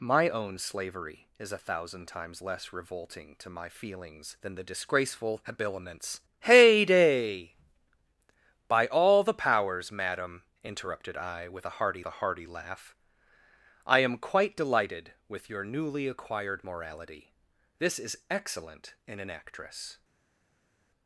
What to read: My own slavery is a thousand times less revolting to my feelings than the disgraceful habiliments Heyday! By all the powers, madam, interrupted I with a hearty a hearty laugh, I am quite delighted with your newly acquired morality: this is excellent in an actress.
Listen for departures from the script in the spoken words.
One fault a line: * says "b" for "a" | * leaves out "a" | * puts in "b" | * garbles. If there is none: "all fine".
all fine